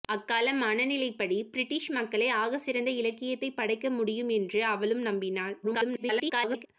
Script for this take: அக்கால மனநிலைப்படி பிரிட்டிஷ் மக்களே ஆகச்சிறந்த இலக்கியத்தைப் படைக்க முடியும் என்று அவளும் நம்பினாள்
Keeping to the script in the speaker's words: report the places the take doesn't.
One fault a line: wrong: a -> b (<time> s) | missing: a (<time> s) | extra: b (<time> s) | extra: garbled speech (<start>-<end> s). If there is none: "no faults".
extra: garbled speech (5.6-6.7 s)